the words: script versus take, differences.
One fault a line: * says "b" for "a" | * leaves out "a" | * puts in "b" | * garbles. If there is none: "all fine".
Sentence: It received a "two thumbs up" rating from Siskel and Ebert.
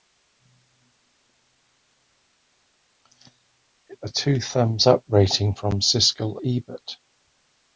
* leaves out "received"
* leaves out "and"